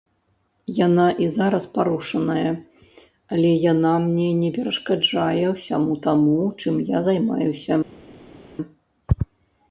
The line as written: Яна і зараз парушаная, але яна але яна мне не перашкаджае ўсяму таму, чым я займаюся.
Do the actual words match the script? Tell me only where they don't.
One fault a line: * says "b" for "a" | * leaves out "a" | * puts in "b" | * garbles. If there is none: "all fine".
* leaves out "але яна"